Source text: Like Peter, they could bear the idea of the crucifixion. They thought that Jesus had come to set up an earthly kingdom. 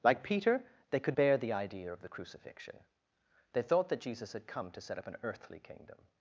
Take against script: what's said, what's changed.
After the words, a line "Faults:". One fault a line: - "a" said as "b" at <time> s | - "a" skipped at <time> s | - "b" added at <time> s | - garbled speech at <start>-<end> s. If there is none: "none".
Like Peter, they could bear the idea of the crucifixion. They thought that Jesus had come to set up an earthly kingdom.
Faults:
none